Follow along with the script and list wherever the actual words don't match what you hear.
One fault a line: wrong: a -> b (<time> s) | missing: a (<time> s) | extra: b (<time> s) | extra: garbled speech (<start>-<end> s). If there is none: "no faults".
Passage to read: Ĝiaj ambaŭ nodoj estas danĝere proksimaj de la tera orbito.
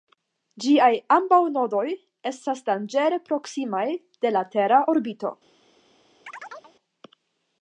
no faults